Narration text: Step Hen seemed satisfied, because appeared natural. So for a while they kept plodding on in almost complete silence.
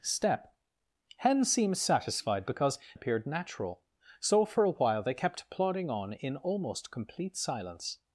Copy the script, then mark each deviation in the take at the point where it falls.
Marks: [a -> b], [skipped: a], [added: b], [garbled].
Step Hen seemed satisfied, because appeared natural. So for a while they kept plodding on in almost complete silence.